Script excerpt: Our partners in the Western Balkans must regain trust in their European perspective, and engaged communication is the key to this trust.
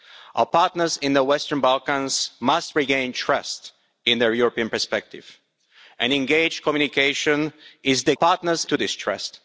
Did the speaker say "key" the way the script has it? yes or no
no